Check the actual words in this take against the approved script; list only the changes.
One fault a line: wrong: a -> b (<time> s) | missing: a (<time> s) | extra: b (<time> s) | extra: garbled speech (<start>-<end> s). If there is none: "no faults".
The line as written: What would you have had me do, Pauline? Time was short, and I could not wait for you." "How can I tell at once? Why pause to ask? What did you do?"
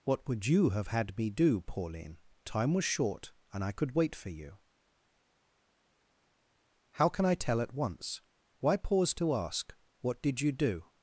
missing: not (4.0 s)